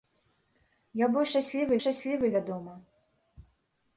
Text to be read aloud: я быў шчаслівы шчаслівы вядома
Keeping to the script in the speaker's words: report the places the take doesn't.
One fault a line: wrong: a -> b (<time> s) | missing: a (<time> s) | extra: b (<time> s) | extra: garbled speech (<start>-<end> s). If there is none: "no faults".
no faults